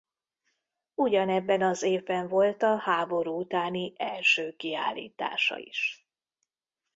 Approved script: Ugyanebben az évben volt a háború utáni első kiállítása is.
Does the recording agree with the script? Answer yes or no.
yes